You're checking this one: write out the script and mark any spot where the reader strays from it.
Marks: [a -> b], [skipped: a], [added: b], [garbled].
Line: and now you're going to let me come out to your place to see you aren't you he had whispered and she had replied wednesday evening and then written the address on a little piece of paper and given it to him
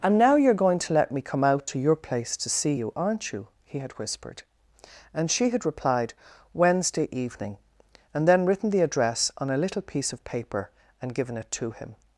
and now you're going to let me come out to your place to see you aren't you he had whispered and she had replied wednesday evening and then written the address on a little piece of paper and given it to him